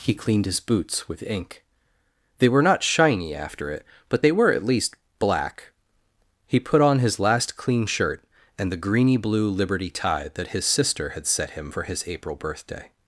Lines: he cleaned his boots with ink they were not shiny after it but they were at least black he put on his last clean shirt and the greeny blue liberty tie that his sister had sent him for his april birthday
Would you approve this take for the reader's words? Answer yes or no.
no